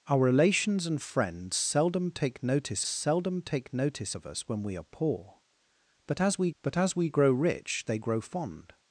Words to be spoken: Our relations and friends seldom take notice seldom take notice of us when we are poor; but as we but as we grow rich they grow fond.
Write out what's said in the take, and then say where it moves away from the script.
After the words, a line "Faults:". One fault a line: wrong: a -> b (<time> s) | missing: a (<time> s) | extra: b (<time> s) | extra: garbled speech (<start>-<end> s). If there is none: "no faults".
Our relations and friends seldom take notice seldom take notice of us when we are poor; but as we but as we grow rich they grow fond.
Faults:
no faults